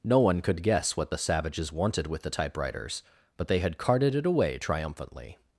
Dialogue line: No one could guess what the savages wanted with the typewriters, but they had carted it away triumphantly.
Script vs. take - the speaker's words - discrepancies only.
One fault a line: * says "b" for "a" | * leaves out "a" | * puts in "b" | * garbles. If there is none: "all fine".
all fine